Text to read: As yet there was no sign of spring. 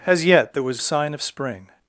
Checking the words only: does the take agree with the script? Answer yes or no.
no